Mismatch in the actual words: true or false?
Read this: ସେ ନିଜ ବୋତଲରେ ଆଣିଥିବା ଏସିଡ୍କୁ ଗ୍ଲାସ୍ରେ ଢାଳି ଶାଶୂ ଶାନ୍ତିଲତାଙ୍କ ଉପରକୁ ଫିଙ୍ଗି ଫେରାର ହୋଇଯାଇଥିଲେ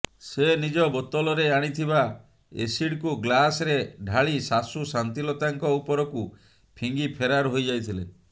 false